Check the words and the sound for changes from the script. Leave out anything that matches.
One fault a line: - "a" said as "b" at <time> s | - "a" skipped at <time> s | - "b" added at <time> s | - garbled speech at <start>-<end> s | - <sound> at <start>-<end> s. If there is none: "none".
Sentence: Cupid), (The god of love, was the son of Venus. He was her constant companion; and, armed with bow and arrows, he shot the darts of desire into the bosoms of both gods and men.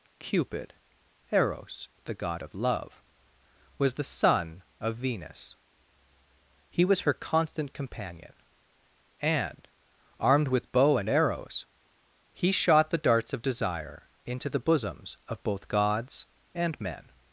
- "Eros" added at 1.3 s